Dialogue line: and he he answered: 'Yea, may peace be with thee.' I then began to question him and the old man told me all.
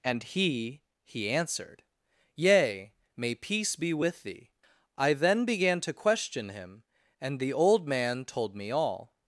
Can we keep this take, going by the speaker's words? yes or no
yes